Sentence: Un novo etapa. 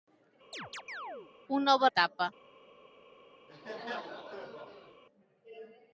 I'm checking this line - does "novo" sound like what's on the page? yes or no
yes